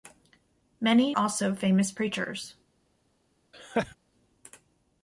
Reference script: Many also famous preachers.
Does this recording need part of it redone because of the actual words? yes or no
no